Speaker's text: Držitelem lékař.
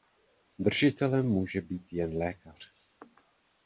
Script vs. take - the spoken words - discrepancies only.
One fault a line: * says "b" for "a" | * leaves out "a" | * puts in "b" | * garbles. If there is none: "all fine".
* puts in "může být jen"